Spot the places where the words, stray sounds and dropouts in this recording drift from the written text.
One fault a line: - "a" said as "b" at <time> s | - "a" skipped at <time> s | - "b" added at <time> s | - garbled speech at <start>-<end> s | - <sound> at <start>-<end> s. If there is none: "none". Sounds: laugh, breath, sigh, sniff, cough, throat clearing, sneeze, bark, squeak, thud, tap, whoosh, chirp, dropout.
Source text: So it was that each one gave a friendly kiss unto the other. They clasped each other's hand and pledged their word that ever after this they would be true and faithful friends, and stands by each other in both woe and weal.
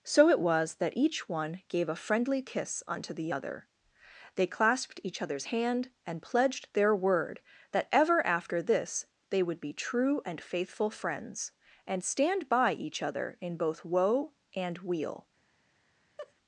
- "stands" said as "stand" at 12.0 s
- laugh at 16.2-16.3 s